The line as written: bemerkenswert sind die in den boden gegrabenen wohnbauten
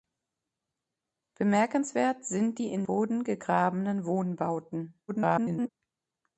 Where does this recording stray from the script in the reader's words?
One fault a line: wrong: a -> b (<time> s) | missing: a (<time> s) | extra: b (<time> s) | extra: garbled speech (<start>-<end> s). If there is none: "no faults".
missing: den (2.8 s)
extra: garbled speech (5.1-5.7 s)